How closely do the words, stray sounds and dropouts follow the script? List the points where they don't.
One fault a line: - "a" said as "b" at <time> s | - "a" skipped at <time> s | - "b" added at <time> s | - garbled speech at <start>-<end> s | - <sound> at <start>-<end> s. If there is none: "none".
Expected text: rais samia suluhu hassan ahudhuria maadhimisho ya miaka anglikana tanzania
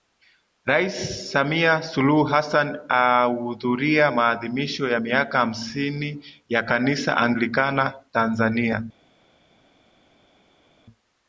- "hamsini ya kanisa" added at 5.4 s